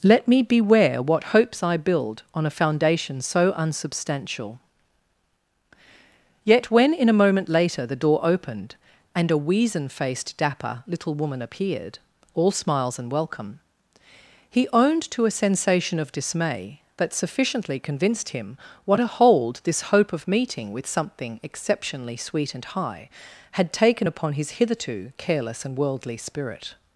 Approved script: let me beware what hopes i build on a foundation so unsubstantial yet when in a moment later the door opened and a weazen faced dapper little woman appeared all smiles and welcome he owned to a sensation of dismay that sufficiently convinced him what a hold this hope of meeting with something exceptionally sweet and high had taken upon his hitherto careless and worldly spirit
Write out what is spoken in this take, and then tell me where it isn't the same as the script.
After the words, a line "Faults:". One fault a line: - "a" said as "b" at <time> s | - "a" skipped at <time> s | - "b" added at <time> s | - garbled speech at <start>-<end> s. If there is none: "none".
let me beware what hopes i build on a foundation so unsubstantial yet when in a moment later the door opened and a weazen faced dapper little woman appeared all smiles and welcome he owned to a sensation of dismay that sufficiently convinced him what a hold this hope of meeting with something exceptionally sweet and high had taken upon his hitherto careless and worldly spirit
Faults:
none